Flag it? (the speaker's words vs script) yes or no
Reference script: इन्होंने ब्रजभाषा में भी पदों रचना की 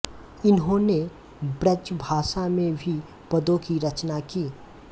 yes